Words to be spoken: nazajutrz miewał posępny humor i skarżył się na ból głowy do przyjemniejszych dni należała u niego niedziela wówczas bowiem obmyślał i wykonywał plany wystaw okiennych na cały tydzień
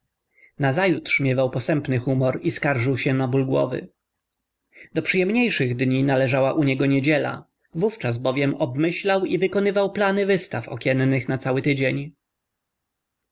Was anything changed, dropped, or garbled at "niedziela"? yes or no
no